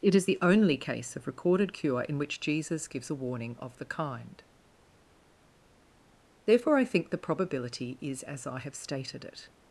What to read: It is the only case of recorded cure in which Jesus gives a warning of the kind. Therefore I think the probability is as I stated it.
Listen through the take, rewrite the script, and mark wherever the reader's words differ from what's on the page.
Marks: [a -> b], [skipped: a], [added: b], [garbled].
It is the only case of recorded cure in which Jesus gives a warning of the kind. Therefore I think the probability is as I [added: have] stated it.